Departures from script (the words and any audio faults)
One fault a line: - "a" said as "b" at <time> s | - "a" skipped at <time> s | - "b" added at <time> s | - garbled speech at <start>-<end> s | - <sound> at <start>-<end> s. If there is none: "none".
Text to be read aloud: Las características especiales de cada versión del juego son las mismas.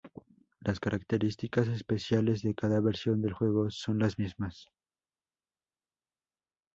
none